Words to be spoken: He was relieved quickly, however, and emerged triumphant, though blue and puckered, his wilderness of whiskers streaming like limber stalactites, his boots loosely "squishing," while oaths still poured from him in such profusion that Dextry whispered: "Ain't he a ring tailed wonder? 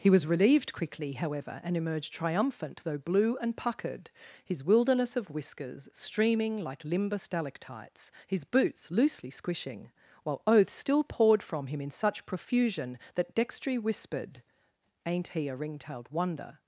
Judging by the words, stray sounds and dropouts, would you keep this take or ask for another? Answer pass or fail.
pass